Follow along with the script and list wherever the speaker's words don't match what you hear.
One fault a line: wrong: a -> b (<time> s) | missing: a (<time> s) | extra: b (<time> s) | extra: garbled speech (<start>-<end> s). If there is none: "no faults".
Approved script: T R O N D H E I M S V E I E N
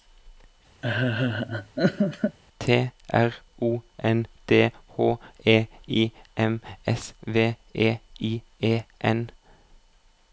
no faults